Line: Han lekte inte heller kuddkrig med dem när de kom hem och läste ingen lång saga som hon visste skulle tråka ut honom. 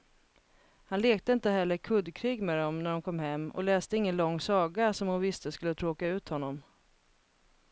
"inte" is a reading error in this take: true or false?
false